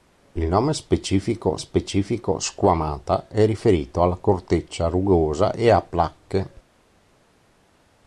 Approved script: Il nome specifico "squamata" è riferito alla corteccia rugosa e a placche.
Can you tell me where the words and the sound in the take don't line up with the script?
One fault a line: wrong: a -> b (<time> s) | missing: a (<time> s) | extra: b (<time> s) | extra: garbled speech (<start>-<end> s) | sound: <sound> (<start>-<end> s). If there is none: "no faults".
extra: specifico (1.6 s)